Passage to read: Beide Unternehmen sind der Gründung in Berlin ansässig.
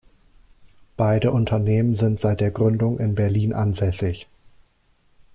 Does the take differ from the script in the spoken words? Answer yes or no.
yes